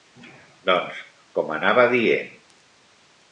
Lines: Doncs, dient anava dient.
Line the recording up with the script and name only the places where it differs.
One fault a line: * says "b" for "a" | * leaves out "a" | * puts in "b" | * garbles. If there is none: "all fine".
* says "com" for "dient"